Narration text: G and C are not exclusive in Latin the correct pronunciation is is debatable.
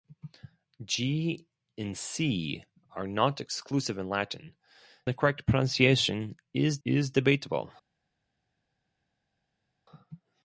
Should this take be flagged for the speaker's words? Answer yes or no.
no